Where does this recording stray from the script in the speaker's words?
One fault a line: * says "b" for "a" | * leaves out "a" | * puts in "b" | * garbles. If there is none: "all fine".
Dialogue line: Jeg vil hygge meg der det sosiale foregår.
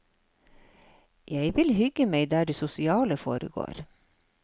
all fine